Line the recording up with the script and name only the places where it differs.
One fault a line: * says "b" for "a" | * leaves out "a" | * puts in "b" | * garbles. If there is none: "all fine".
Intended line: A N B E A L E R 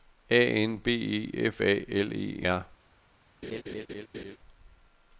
* puts in "F"